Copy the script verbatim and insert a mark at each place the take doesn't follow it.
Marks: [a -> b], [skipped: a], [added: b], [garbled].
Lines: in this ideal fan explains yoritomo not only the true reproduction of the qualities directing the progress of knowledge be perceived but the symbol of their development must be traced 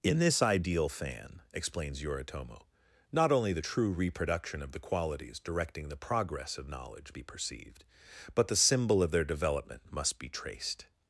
in this ideal fan explains yoritomo not only the true reproduction of the qualities directing the progress of knowledge be perceived but the symbol of their development must be traced